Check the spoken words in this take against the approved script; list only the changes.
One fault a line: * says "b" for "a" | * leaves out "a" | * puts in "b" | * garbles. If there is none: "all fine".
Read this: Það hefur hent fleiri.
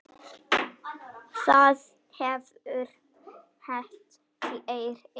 all fine